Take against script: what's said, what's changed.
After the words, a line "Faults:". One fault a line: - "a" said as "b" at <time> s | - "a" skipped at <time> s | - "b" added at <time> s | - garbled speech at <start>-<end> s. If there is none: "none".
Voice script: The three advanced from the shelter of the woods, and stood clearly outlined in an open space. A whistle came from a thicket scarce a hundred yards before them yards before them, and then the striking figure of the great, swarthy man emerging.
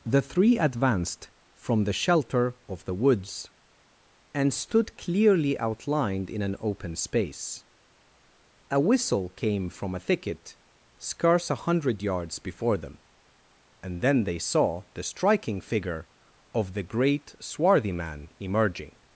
The three advanced from the shelter of the woods, and stood clearly outlined in an open space. A whistle came from a thicket scarce a hundred yards before them, and then they saw the striking figure of the great, swarthy man emerging.
Faults:
- "yards before them and then" said as "and then they saw" at 13.8 s